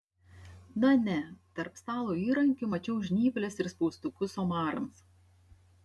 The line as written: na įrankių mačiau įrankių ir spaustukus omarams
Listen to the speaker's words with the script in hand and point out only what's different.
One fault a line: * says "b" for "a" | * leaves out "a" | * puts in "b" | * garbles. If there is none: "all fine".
* puts in "ne tarp stalo"
* says "žnyples" for "įrankių"